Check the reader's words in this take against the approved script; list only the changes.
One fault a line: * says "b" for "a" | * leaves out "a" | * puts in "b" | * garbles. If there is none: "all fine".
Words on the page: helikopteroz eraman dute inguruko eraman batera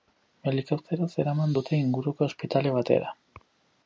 * says "ospitale" for "eraman"